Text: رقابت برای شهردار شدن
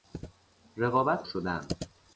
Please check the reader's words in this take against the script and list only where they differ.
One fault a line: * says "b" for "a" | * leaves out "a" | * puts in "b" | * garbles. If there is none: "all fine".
* leaves out "برای شهردار"